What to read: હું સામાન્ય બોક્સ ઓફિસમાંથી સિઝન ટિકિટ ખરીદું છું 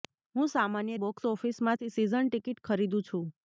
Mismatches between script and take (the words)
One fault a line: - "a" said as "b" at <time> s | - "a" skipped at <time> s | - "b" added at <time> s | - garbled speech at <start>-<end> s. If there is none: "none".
none